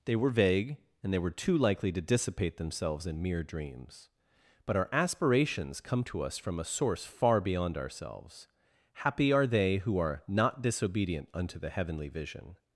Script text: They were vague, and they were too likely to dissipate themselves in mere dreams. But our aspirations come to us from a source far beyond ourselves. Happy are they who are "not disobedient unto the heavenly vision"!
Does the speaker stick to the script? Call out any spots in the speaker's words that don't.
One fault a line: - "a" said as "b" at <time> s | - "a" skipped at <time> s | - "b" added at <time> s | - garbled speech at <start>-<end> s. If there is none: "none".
none